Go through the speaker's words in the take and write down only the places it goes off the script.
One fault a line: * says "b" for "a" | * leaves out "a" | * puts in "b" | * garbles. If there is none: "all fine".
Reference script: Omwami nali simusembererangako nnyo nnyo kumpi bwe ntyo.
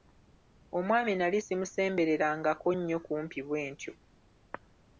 * leaves out "nnyo"